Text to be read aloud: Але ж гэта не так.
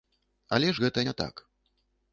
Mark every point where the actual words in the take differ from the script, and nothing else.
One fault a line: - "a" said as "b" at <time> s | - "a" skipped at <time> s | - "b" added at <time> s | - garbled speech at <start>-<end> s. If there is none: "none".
none